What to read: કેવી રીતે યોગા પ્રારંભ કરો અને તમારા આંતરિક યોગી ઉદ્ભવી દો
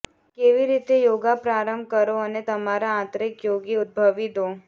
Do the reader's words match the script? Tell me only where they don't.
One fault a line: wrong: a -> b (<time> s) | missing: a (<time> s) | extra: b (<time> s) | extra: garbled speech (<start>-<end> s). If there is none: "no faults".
no faults